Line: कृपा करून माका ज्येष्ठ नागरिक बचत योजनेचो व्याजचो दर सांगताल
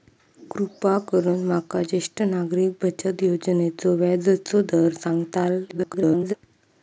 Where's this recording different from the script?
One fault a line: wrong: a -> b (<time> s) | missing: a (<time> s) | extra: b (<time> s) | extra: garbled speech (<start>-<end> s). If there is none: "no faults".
extra: garbled speech (5.7-6.3 s)